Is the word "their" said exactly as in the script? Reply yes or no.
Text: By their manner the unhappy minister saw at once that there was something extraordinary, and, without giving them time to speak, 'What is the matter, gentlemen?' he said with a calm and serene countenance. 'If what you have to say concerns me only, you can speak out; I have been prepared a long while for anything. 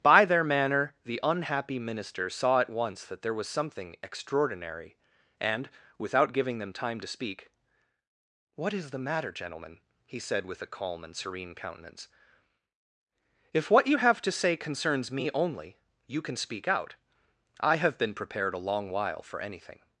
yes